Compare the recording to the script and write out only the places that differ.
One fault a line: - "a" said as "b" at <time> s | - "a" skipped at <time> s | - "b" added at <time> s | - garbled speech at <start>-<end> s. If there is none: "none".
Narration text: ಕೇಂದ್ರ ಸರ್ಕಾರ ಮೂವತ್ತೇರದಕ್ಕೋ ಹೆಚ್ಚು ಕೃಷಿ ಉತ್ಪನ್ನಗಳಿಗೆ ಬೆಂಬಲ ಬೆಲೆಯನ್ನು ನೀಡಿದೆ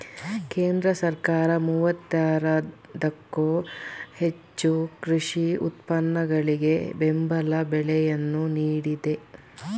none